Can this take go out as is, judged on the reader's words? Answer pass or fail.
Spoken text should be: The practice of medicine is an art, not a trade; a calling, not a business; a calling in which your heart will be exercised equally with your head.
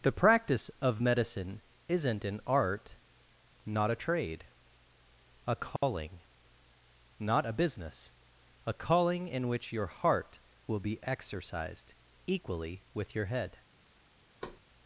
fail